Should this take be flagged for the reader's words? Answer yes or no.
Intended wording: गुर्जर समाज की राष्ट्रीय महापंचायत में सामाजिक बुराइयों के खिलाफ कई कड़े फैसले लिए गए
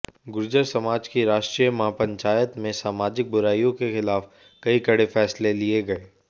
no